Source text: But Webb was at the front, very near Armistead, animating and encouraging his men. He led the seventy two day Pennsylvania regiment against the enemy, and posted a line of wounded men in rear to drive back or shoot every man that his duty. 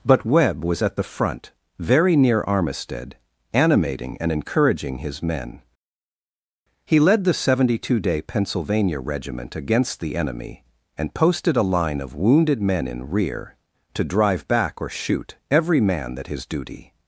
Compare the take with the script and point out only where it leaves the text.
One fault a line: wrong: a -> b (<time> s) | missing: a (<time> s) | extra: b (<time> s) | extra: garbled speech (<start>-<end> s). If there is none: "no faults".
no faults